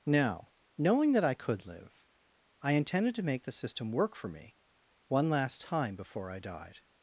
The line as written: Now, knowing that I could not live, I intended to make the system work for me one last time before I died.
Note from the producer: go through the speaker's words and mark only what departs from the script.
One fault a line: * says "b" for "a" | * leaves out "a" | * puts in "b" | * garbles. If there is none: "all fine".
* leaves out "not"